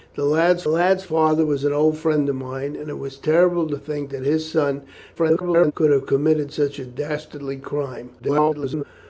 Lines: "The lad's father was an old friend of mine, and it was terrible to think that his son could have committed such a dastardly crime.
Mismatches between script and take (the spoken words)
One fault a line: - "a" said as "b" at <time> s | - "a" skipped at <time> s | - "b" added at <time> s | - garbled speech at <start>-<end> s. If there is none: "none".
- "lad's" added at 0.7 s
- garbled speech at 5.2-5.7 s
- garbled speech at 8.2-8.8 s